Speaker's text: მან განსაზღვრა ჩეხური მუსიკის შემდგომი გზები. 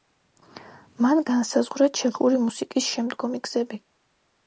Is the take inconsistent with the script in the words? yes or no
no